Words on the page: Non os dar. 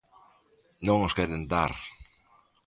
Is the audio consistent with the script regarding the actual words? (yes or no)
no